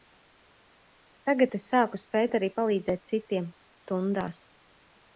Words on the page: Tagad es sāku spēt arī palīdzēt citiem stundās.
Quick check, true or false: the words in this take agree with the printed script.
true